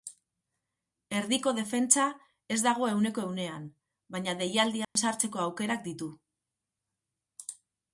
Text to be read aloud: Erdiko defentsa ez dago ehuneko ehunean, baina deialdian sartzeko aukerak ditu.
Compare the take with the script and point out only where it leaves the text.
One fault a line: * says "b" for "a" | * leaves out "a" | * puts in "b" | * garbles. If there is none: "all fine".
all fine